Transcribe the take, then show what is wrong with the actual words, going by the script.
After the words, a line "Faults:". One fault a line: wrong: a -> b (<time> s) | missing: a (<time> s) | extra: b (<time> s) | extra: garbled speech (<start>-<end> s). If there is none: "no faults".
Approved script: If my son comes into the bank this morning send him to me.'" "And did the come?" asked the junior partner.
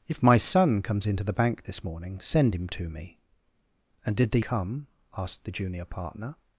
If my son comes into the bank this morning send him to me.'" "And did the come?" asked the junior partner.
Faults:
no faults